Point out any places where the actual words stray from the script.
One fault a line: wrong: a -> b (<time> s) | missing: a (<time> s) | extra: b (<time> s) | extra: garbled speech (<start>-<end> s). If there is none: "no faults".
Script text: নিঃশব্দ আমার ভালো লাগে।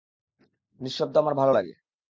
no faults